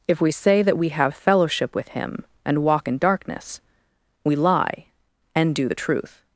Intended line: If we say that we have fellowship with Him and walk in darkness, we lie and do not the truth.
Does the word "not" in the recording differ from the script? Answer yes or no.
yes